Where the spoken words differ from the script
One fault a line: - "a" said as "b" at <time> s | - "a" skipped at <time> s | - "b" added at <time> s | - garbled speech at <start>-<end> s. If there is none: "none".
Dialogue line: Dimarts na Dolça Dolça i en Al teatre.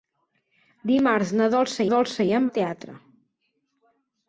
none